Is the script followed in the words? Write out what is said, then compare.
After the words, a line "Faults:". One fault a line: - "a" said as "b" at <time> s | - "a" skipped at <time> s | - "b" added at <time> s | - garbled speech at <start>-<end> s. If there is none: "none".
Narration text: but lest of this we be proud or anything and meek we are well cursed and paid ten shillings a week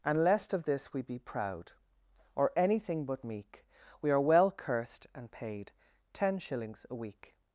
and lest of this we be proud or anything but meek we are well cursed and paid ten shillings a week
Faults:
- "but" said as "and" at 0.0 s
- "and" said as "but" at 3.0 s